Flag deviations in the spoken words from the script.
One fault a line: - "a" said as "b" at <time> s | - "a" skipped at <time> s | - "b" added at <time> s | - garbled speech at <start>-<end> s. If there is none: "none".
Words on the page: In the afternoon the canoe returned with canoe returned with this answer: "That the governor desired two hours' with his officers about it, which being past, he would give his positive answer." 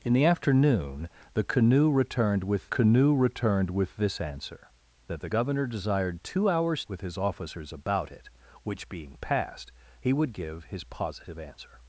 none